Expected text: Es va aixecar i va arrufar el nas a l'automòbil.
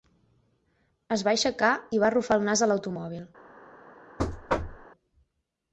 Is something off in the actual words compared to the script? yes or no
no